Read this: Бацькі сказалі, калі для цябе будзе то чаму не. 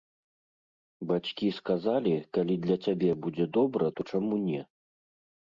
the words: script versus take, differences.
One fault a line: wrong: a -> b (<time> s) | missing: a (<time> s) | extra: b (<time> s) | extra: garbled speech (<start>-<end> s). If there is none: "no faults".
extra: добра (3.6 s)